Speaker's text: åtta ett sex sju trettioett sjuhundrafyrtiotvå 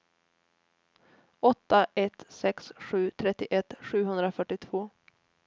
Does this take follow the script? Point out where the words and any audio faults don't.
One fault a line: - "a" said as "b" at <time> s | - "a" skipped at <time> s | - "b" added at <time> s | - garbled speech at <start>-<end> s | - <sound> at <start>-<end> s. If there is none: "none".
none